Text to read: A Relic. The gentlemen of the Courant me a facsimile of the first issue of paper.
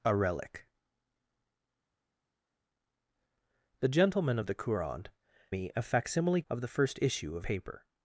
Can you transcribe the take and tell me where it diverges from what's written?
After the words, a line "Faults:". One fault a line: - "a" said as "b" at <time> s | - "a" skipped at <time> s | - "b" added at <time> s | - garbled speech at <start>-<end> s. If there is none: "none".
A Relic. The gentlemen of the Courant me a facsimile of the first issue of paper.
Faults:
none